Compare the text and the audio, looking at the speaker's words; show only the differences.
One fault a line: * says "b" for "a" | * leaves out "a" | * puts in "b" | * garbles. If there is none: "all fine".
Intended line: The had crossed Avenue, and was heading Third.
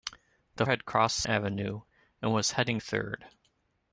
all fine